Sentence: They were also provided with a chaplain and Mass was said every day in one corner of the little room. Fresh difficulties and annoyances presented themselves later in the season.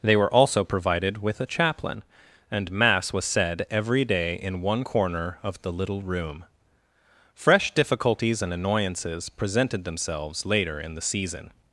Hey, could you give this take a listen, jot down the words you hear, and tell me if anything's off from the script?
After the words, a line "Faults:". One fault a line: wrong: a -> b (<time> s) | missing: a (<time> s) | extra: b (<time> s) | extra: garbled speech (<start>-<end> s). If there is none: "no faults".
They were also provided with a chaplain and Mass was said every day in one corner of the little room. Fresh difficulties and annoyances presented themselves later in the season.
Faults:
no faults